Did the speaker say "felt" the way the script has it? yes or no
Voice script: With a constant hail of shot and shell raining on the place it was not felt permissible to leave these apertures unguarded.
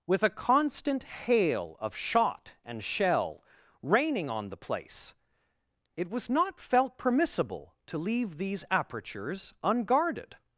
yes